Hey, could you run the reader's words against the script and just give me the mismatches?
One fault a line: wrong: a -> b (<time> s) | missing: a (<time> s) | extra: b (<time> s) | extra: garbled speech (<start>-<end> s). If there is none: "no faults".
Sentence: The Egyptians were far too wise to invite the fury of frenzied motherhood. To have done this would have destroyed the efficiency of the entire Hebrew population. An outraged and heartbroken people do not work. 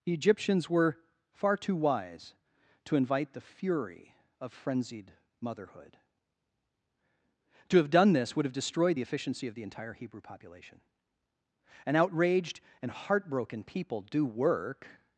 missing: not (14.2 s)